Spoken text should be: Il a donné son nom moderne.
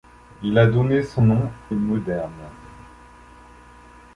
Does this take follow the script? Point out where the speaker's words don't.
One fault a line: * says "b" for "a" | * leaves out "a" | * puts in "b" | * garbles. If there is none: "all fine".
all fine